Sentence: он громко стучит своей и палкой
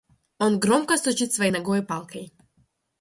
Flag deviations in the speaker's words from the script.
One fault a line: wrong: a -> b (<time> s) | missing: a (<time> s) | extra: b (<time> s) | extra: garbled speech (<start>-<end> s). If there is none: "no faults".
extra: ногой (1.5 s)